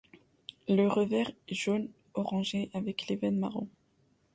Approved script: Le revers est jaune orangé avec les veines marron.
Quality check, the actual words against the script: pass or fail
pass